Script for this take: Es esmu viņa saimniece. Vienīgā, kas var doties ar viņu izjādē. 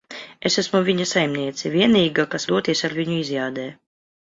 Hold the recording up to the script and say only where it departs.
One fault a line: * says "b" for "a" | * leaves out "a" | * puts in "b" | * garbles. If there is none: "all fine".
* leaves out "var"